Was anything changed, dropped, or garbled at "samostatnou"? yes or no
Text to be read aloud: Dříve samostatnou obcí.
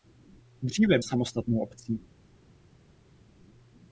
no